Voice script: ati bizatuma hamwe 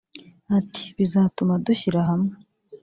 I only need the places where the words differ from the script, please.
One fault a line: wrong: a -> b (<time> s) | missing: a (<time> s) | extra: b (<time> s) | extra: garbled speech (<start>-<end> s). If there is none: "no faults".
extra: dushyira (1.6 s)